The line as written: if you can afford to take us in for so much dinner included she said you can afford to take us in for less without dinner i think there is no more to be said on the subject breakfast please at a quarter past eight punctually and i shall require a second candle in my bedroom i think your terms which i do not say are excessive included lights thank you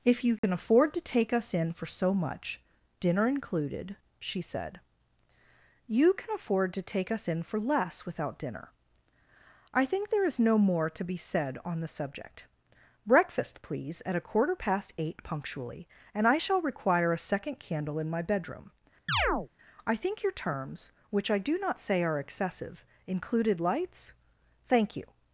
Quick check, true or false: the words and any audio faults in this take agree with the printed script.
false